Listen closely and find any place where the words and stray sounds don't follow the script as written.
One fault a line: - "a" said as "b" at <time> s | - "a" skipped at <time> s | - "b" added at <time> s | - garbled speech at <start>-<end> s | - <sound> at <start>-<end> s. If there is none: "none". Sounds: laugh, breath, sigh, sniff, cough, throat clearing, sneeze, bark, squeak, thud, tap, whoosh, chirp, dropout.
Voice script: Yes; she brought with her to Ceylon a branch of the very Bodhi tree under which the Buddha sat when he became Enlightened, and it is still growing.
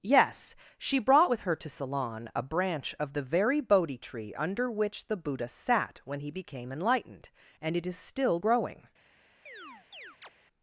- chirp at 9.5-10.3 s